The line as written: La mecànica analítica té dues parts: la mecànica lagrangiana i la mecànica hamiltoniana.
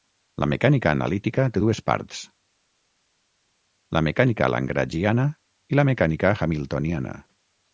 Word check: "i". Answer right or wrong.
right